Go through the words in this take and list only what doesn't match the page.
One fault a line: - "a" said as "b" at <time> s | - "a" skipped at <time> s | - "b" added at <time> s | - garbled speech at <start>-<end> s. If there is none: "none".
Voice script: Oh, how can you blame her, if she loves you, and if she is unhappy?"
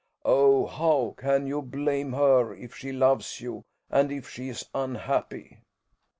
none